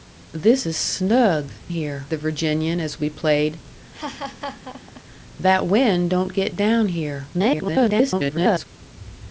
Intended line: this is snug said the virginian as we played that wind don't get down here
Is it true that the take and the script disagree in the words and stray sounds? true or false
true